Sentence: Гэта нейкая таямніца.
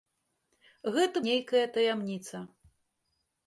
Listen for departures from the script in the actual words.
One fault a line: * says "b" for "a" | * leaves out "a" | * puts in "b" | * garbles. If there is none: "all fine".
all fine